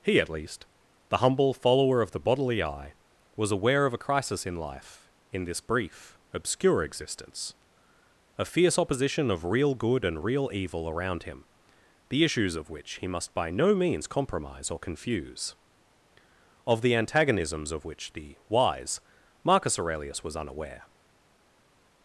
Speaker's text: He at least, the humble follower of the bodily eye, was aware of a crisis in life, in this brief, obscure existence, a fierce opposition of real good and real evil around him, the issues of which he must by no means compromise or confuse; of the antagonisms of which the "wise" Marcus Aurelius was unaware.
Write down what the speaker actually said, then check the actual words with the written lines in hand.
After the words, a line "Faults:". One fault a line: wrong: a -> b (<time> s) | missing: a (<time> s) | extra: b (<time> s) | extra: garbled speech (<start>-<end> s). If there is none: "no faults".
He at least, the humble follower of the bodily eye, was aware of a crisis in life, in this brief, obscure existence, a fierce opposition of real good and real evil around him, the issues of which he must by no means compromise or confuse; of the antagonisms of which the "wise" Marcus Aurelius was unaware.
Faults:
no faults